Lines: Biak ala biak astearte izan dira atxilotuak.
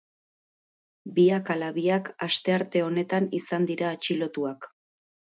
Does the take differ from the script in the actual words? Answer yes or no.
yes